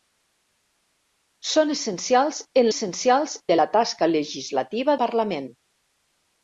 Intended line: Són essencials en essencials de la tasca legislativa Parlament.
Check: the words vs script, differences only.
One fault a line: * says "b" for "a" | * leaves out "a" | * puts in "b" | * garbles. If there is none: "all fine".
all fine